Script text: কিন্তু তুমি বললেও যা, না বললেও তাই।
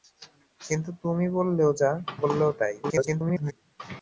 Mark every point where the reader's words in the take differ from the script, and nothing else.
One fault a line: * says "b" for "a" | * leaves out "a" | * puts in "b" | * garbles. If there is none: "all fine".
* leaves out "না"
* garbles